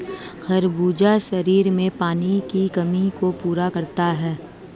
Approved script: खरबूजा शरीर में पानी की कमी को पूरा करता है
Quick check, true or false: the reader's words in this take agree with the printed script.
true